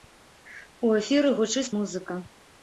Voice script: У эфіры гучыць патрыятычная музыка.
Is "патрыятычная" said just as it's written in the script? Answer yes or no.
no